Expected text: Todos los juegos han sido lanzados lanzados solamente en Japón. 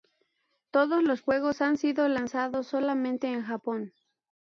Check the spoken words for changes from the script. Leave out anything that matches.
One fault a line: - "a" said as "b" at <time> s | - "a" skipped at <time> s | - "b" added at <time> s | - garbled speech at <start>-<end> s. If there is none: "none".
- "lanzados" skipped at 2.6 s